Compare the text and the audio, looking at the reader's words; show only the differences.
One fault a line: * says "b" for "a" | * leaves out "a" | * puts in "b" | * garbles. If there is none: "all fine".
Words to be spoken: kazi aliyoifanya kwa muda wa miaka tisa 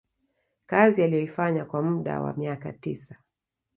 all fine